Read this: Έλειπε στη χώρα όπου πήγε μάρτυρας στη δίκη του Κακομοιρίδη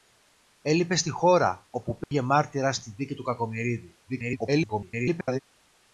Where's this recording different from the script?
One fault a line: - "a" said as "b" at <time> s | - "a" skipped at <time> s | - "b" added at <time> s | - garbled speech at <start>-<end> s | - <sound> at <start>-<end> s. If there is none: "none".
- dropout at 2.0-2.1 s
- garbled speech at 4.1-5.4 s